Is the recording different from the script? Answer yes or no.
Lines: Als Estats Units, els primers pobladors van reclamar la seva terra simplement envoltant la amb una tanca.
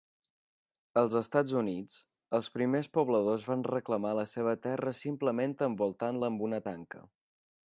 no